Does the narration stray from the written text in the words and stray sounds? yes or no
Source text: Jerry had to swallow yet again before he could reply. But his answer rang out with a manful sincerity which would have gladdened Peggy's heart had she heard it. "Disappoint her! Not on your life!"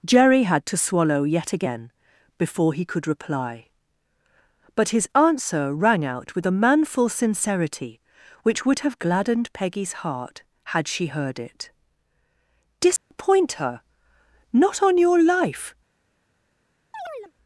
yes